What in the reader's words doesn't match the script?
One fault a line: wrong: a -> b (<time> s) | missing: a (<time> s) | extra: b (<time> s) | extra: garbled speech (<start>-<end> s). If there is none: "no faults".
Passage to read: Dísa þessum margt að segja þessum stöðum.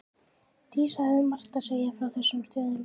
wrong: þessum -> hafði (1.1 s)
extra: frá (2.0 s)